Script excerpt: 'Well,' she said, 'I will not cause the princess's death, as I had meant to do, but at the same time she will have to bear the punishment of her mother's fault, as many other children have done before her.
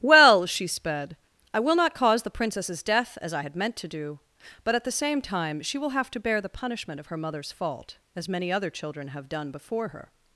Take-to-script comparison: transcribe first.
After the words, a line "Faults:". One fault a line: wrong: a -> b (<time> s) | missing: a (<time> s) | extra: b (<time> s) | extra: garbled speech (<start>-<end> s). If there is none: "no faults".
'Well,' she sped, 'I will not cause the princess's death, as I had meant to do, but at the same time she will have to bear the punishment of her mother's fault, as many other children have done before her.
Faults:
wrong: said -> sped (0.7 s)